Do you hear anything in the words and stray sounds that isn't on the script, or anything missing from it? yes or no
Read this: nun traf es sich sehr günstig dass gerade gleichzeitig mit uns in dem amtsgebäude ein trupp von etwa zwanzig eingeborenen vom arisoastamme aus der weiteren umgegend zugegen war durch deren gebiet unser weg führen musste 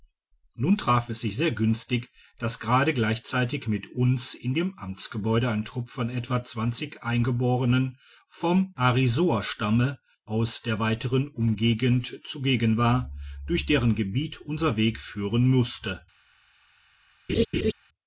yes